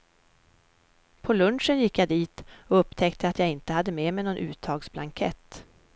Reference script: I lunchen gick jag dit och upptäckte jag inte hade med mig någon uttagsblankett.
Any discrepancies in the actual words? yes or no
yes